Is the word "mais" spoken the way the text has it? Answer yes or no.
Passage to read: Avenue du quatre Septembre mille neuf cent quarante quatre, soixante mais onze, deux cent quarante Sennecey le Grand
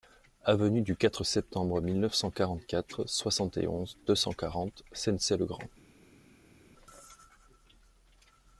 no